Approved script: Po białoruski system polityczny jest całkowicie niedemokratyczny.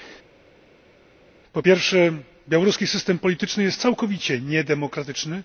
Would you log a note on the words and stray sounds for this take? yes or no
yes